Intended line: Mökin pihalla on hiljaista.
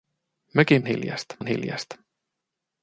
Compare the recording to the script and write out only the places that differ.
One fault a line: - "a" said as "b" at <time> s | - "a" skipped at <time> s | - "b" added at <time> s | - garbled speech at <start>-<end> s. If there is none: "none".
- "pihalla" said as "hiljaista" at 0.9 s